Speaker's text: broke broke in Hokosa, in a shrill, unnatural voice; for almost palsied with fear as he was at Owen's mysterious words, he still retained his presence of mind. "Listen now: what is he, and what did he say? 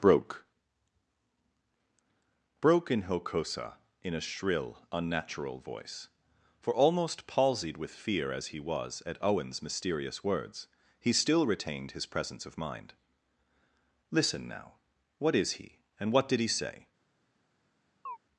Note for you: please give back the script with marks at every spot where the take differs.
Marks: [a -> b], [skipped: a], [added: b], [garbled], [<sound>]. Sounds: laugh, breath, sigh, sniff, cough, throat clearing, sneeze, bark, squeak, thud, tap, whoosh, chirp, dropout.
broke broke in Hokosa, in a shrill, unnatural voice; for almost palsied with fear as he was at Owen's mysterious words, he still retained his presence of mind. "Listen now: what is he, and what did he say? [chirp]